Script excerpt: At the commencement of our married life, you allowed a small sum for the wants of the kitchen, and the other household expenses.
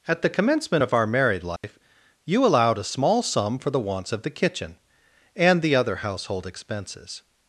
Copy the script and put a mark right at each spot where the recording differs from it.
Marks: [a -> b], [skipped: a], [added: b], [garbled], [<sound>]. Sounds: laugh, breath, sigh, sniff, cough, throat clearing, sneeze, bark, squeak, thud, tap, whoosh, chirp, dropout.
At the commencement of our married life, [dropout] you allowed a small sum for the wants of the kitchen, and the other household expenses.